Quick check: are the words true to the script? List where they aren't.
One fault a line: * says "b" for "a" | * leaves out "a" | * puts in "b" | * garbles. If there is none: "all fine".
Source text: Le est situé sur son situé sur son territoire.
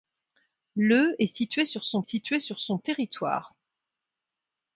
all fine